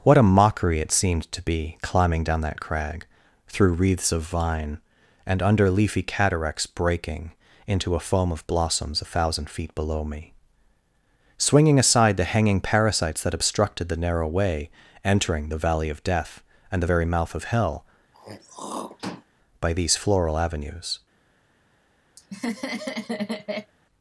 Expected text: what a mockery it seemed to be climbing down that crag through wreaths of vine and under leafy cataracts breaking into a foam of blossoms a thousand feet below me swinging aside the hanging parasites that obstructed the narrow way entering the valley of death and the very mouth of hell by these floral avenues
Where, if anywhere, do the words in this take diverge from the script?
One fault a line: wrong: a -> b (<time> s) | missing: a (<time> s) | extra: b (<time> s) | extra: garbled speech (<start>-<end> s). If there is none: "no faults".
no faults